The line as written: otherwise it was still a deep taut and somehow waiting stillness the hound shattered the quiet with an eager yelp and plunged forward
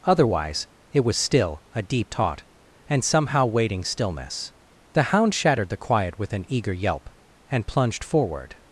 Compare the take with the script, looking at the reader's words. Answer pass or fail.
pass